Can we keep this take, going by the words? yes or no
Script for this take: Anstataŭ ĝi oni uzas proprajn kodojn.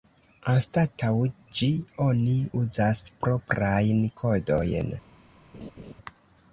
yes